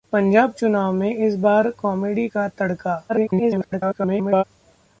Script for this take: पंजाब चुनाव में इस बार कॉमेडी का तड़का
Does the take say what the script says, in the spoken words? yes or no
no